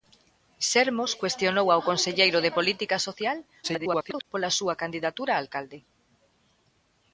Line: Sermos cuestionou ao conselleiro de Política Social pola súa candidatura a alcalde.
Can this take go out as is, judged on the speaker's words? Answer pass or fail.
fail